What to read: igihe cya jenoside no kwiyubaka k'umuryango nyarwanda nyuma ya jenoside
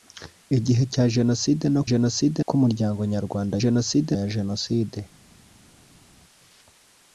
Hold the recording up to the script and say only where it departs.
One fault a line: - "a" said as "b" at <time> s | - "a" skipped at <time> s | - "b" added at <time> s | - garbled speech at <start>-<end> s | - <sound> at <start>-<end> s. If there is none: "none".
- "kwiyubaka" said as "jenoside" at 1.9 s
- "nyuma" said as "jenoside" at 3.6 s